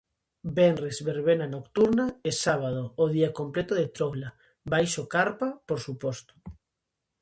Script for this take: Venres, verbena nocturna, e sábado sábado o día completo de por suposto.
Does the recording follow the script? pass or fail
fail